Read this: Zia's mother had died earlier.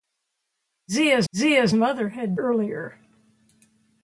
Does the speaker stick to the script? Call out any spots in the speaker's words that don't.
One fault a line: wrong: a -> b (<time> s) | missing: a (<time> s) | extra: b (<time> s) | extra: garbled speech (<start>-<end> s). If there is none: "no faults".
extra: zia's (1.3 s)
missing: died (2.4 s)